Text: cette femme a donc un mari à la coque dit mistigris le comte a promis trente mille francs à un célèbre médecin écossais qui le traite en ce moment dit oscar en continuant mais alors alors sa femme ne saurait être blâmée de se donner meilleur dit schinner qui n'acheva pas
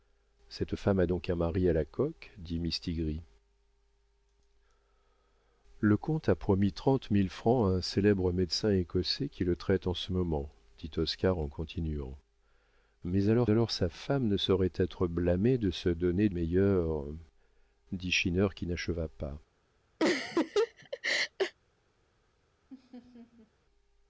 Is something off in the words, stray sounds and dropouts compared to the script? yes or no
yes